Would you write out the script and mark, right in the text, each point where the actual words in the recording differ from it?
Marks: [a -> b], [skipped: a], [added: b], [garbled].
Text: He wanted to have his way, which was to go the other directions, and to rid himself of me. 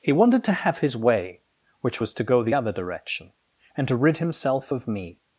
He wanted to have his way, which was to go the other [directions, -> direction] and to rid himself of me.